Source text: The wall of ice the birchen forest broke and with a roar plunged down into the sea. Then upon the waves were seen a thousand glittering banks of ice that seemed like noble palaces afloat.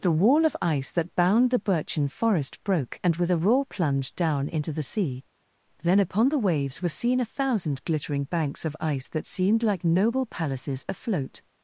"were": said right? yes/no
yes